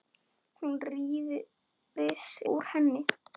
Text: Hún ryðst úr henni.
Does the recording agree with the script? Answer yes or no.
yes